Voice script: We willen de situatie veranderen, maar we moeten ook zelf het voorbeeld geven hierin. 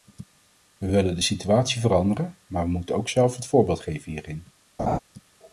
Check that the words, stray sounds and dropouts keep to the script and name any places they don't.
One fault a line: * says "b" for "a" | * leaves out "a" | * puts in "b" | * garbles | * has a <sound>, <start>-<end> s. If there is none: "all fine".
* has a laugh, 4.8-5.0 s